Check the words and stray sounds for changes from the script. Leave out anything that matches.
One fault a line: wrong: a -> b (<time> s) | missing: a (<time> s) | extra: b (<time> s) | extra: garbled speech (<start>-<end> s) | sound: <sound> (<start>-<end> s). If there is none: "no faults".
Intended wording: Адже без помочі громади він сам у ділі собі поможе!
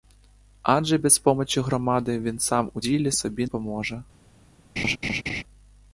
sound: laugh (4.8-5.4 s)